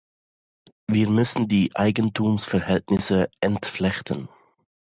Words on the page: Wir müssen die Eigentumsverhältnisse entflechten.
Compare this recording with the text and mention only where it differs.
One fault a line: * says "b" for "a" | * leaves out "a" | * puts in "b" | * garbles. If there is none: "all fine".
all fine